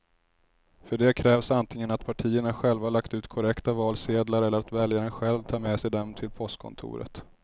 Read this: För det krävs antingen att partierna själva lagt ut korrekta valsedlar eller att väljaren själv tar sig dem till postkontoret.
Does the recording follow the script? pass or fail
fail